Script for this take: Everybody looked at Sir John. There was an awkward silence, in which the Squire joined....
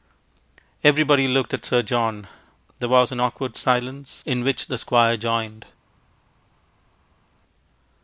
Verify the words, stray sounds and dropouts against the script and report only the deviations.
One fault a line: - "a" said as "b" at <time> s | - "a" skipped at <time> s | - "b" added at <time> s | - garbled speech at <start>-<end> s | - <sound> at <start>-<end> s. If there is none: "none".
none